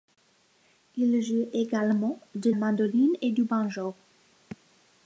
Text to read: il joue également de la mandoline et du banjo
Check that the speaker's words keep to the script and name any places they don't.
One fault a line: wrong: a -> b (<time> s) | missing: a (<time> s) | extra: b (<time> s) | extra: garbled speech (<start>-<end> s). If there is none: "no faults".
missing: la (2.5 s)